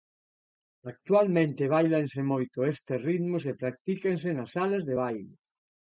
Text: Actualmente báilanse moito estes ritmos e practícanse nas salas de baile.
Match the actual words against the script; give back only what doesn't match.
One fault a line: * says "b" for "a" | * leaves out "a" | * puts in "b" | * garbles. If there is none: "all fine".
all fine